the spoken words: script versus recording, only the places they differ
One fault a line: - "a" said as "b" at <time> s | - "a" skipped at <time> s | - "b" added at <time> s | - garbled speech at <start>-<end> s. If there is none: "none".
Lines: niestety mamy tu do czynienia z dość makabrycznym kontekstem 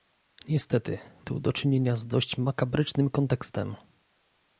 - "mamy" skipped at 1.0 s